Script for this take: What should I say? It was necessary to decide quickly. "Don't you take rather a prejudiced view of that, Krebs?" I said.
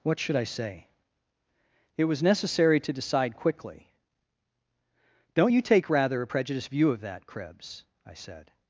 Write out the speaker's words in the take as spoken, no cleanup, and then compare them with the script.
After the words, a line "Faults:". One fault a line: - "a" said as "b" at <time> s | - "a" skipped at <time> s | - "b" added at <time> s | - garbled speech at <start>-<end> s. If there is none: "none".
What should I say? It was necessary to decide quickly. "Don't you take rather a prejudiced view of that, Krebs?" I said.
Faults:
none